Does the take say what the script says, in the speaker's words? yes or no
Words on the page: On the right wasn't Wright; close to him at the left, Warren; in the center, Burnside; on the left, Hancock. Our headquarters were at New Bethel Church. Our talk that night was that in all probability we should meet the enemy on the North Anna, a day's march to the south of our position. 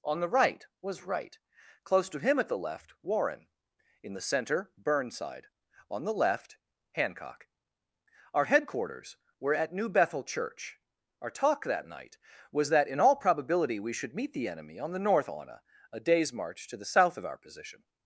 no